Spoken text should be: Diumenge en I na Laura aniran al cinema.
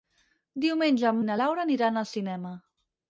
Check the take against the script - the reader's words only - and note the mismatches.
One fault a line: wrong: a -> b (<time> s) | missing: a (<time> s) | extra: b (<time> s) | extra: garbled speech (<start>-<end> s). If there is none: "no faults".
no faults